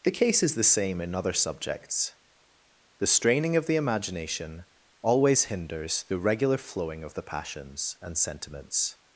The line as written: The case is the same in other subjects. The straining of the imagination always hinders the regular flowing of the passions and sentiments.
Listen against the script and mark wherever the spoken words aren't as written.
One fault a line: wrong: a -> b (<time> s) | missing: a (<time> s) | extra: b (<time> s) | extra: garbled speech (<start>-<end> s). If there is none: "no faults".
no faults